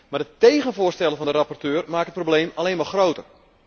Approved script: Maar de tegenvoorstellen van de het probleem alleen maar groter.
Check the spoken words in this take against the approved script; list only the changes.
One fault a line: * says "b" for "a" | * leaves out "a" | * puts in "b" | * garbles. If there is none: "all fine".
* puts in "rapporteur maken"